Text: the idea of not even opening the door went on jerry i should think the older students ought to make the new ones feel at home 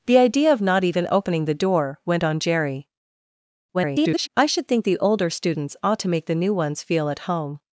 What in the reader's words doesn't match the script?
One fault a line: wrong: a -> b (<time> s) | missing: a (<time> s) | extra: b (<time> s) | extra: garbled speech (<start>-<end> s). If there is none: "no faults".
extra: garbled speech (3.7-4.3 s)